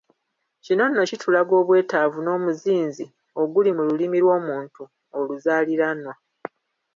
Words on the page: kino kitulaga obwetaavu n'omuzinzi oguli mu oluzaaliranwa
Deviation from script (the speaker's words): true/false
true